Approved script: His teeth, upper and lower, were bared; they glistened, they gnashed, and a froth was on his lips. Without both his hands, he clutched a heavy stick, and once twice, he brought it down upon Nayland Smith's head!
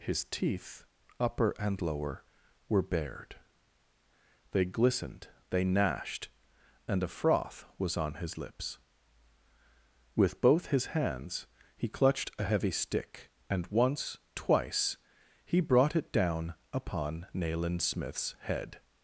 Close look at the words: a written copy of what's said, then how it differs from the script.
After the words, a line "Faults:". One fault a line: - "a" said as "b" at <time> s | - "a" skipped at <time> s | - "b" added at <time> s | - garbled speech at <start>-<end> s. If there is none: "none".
His teeth, upper and lower, were bared; they glistened, they gnashed, and a froth was on his lips. With both his hands, he clutched a heavy stick, and once twice, he brought it down upon Nayland Smith's head!
Faults:
- "Without" said as "With" at 10.2 s